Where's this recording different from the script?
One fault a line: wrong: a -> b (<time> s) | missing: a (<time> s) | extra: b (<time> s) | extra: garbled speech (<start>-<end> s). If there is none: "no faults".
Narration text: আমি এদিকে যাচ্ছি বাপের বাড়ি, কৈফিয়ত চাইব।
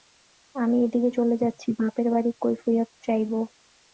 extra: চলে (1.2 s)